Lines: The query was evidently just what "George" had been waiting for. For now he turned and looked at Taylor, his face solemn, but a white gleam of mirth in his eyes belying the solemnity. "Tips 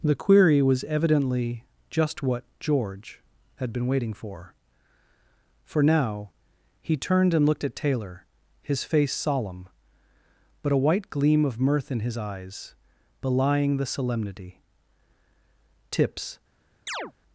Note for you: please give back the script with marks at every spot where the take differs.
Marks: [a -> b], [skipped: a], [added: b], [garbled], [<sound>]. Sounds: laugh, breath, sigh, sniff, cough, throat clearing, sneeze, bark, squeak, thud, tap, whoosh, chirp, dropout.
The query was evidently just what "George" had been waiting for. For now he turned and looked at Taylor, his face solemn, but a white gleam of mirth in his eyes belying the solemnity. "Tips [chirp]